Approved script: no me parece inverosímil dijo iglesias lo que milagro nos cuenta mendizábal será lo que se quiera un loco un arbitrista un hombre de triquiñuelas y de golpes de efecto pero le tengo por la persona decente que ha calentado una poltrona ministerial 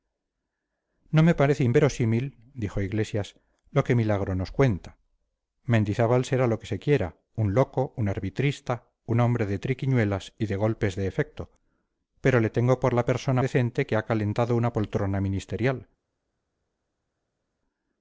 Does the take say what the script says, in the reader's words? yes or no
yes